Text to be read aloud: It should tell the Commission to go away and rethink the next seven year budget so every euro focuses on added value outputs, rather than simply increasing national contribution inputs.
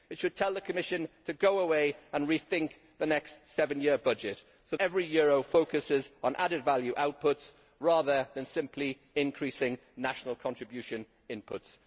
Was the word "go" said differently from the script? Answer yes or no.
no